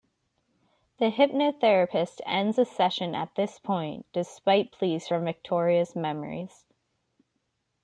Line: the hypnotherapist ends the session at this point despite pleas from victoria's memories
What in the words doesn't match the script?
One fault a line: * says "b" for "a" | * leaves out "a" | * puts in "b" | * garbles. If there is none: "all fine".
all fine